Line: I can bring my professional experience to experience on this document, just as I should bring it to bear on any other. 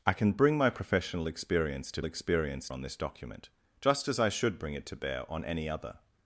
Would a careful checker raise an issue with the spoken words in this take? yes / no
no